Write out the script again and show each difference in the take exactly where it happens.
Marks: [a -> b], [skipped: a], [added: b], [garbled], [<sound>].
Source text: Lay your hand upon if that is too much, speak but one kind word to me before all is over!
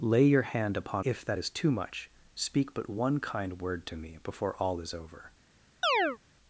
Lay your hand upon if that is too much, speak but one kind word to me before all is over! [chirp]